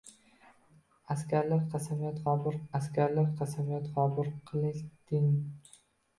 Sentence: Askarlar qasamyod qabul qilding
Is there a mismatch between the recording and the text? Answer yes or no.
yes